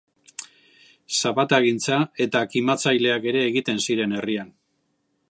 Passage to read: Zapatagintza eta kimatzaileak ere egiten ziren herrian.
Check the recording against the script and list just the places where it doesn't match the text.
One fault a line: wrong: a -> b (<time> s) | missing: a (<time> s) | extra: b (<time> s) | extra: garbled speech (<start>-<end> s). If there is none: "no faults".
no faults